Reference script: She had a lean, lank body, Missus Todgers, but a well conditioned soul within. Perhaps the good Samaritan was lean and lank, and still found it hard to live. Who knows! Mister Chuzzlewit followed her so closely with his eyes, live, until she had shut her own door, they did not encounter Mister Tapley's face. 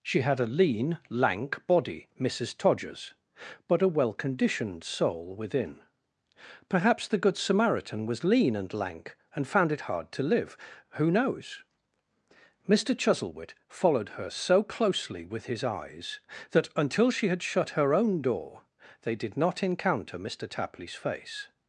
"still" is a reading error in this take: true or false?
true